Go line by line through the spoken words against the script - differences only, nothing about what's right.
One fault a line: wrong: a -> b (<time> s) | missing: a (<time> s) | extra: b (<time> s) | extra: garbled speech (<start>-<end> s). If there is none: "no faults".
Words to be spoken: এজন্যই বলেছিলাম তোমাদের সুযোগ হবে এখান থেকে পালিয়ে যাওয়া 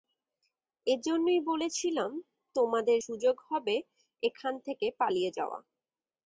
no faults